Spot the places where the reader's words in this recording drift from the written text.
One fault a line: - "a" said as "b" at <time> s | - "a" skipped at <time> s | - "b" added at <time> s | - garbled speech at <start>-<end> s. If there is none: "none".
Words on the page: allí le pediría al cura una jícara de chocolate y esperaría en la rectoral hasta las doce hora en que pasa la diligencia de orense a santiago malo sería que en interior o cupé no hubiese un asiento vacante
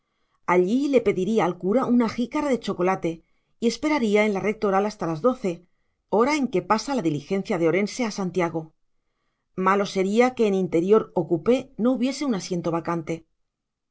none